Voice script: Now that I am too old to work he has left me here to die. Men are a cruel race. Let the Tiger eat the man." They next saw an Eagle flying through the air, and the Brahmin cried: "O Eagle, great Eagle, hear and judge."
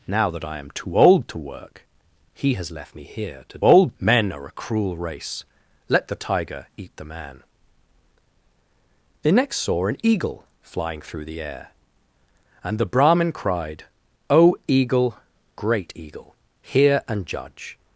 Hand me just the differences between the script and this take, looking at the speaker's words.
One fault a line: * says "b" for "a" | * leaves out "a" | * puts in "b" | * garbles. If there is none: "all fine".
* says "old" for "die"